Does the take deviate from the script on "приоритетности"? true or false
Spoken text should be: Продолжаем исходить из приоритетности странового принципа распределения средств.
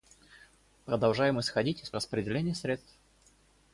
true